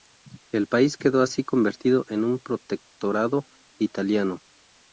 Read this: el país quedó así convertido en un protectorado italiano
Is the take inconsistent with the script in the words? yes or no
no